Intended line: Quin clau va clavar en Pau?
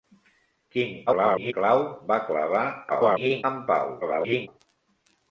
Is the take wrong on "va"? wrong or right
right